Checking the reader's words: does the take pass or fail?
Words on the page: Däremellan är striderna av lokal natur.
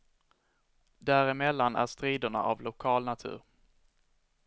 pass